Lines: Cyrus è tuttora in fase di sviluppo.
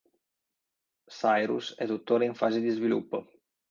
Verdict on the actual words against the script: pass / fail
pass